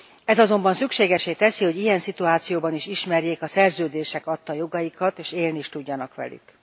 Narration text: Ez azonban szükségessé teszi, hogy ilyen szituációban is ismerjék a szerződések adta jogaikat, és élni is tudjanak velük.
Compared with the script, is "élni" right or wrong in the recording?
right